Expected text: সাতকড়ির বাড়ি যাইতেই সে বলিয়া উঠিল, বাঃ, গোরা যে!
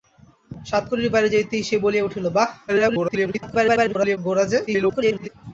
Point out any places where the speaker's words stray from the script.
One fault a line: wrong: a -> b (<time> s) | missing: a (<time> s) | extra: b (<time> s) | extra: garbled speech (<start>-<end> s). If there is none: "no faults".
extra: garbled speech (2.7-4.2 s)
extra: garbled speech (4.7-5.3 s)